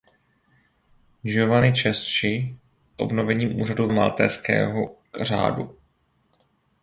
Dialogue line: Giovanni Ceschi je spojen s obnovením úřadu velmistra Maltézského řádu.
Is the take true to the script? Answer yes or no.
no